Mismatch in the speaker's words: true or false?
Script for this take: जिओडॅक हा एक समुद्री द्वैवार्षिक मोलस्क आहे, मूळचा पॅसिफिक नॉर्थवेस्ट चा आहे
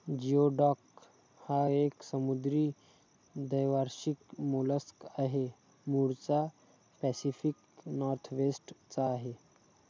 false